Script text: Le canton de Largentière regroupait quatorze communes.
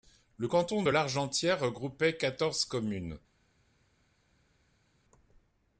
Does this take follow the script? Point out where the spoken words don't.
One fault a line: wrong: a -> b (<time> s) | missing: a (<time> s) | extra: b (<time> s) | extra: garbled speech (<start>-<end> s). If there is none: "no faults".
no faults